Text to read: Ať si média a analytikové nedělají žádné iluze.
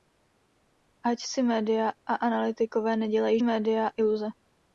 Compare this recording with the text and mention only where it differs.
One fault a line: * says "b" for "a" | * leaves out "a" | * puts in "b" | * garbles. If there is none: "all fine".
* says "média" for "žádné"